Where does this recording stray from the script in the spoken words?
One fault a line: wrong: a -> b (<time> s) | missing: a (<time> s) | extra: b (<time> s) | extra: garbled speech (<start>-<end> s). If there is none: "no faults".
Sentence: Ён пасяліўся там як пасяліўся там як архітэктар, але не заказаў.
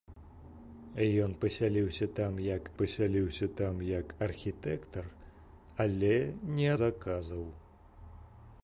no faults